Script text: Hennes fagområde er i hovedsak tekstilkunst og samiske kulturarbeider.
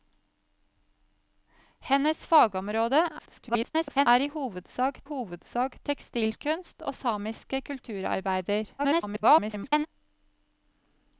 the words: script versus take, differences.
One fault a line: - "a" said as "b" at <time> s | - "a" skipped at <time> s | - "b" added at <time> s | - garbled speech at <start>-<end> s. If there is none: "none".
- garbled speech at 3.2-4.1 s
- "hovedsak" added at 5.1 s
- garbled speech at 8.8-9.9 s